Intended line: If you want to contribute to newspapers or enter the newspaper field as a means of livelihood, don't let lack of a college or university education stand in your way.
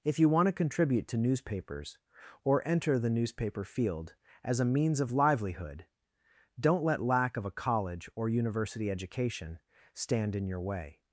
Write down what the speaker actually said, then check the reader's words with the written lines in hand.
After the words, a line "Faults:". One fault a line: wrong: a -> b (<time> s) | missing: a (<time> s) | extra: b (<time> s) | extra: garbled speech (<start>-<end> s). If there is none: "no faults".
If you want to contribute to newspapers or enter the newspaper field as a means of livelihood, don't let lack of a college or university education stand in your way.
Faults:
no faults